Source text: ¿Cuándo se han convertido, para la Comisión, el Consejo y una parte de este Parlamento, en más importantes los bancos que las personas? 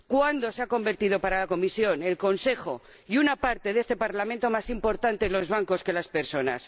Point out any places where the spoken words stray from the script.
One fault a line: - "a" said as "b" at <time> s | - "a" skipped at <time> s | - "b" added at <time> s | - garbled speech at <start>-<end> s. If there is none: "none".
none